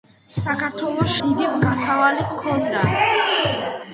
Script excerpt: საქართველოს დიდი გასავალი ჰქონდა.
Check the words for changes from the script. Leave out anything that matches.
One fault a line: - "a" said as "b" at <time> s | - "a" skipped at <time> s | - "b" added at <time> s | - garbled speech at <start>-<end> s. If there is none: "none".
none